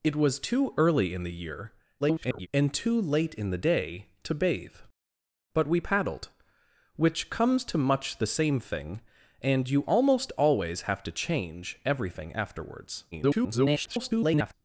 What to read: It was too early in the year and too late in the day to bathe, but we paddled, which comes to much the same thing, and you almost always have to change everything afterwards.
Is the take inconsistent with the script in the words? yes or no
yes